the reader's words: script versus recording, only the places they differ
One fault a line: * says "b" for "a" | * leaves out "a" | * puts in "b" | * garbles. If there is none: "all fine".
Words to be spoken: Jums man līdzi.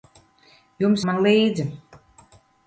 all fine